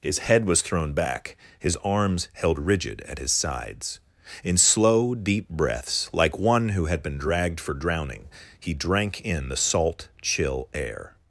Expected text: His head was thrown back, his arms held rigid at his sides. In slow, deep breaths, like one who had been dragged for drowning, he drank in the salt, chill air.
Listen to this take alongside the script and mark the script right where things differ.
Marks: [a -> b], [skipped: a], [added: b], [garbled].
His head was thrown back, his arms held rigid at his sides. In slow, deep breaths, like one who had been dragged for drowning, he drank in the salt, chill air.